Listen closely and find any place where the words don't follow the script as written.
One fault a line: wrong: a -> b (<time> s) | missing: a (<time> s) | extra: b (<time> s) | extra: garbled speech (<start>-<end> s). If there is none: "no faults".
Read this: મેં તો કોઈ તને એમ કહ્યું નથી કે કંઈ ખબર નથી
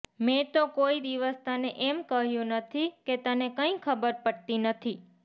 extra: દિવસ (1.0 s)
extra: તને (3.2 s)
extra: પડતી (4.2 s)